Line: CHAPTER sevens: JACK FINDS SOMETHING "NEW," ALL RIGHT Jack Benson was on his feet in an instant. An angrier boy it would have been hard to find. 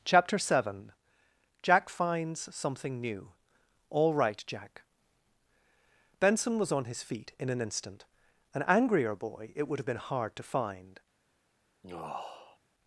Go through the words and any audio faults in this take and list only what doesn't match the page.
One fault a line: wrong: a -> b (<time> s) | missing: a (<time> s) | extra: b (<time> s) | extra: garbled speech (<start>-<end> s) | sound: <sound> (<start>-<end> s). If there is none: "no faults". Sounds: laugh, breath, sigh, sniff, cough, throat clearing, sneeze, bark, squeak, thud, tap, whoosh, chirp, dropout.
wrong: sevens -> seven (0.4 s)
sound: sigh (11.8-12.6 s)